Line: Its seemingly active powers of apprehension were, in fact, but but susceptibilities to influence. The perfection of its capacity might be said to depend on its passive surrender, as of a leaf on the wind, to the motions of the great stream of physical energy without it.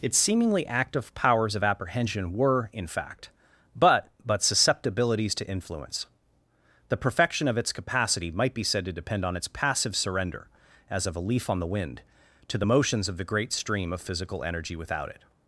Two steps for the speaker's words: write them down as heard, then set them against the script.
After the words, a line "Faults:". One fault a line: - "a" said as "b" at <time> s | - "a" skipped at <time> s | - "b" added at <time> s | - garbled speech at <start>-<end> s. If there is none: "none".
Its seemingly active powers of apprehension were, in fact, but but susceptibilities to influence. The perfection of its capacity might be said to depend on its passive surrender, as of a leaf on the wind, to the motions of the great stream of physical energy without it.
Faults:
none